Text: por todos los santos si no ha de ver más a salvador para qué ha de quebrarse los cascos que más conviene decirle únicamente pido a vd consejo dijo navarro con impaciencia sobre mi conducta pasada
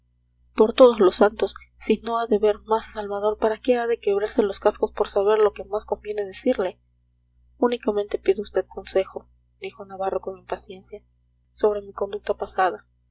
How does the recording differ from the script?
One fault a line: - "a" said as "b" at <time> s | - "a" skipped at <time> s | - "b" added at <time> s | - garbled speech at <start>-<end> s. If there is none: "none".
- "por saber lo" added at 4.9 s